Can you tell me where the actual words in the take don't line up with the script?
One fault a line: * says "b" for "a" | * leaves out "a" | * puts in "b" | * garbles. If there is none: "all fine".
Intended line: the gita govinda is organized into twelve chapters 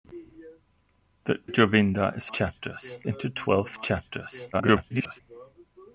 * leaves out "gita"
* says "chapters" for "organized"
* garbles